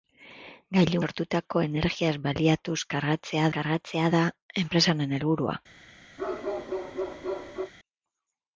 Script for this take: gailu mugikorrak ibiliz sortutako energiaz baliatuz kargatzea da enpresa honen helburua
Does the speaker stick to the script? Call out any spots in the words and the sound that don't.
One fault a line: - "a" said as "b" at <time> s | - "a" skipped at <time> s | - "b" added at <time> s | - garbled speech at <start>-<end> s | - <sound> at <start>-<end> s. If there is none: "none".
- "mugikorrak ibiliz" skipped at 1.0 s
- "kargatzea" added at 3.6 s
- bark at 6.2-7.7 s